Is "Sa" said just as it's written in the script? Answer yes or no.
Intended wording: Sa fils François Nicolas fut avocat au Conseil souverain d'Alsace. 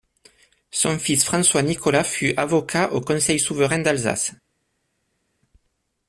no